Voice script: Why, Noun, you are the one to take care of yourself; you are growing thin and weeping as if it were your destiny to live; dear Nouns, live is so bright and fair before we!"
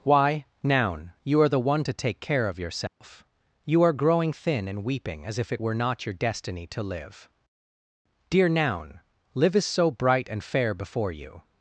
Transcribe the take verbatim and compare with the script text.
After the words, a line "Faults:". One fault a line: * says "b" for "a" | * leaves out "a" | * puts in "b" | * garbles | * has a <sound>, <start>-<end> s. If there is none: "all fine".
Why, Noun, you are the one to take care of yourself; you are growing thin and weeping as if it were not your destiny to live; dear Noun, live is so bright and fair before you!"
Faults:
* has a dropout, 2.9-3.0 s
* puts in "not"
* says "Noun" for "Nouns"
* says "you" for "we"